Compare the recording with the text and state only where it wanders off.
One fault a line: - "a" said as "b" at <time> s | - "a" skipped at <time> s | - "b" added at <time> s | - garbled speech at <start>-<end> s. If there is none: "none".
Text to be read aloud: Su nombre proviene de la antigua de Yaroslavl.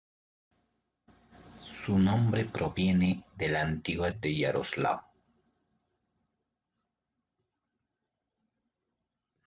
none